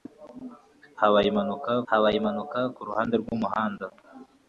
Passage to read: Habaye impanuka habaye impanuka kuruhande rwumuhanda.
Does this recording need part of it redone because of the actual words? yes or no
no